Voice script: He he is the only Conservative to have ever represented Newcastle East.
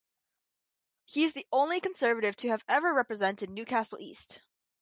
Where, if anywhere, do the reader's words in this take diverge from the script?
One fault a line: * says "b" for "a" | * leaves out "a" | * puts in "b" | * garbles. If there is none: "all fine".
* leaves out "he"